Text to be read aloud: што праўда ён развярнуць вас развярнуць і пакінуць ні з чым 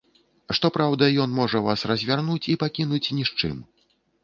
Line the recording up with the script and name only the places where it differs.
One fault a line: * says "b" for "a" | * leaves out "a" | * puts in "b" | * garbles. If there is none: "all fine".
* says "можа" for "развярнуць"